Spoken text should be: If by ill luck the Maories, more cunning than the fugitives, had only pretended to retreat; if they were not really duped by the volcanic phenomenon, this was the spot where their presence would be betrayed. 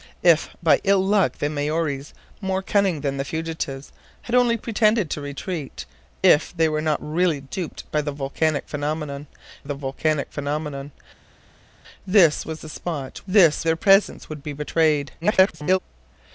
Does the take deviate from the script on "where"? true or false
true